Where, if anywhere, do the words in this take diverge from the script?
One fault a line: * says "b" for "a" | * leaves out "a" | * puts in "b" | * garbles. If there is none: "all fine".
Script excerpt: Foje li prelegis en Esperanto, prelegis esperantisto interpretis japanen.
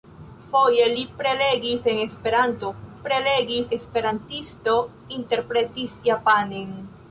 all fine